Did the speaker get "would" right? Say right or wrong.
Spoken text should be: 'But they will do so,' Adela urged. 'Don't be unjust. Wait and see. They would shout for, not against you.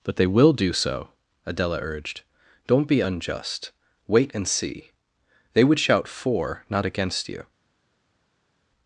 right